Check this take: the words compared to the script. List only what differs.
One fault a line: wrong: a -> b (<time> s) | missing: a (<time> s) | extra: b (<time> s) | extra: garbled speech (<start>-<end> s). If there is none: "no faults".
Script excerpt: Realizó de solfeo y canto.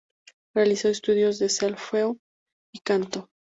extra: estudios (0.9 s)